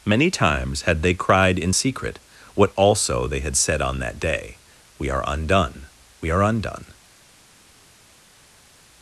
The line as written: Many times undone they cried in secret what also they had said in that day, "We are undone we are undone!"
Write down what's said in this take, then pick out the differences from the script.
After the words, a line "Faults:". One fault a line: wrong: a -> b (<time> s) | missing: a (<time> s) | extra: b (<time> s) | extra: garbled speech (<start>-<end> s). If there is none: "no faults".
Many times had they cried in secret what also they had said on that day, "We are undone we are undone!"
Faults:
wrong: undone -> had (0.8 s)
wrong: in -> on (3.8 s)